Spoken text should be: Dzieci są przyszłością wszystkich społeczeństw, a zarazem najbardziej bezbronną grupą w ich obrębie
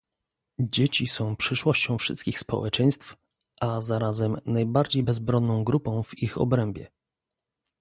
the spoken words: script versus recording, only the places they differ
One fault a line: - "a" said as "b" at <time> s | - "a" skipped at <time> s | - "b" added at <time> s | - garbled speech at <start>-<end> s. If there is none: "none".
none